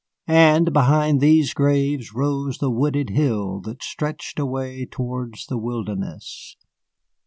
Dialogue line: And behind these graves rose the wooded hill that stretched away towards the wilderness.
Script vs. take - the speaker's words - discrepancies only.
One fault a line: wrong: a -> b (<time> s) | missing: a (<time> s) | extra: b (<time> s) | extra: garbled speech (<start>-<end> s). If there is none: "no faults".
no faults